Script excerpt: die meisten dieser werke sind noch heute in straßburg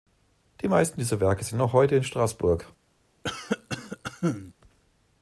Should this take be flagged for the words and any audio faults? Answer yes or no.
yes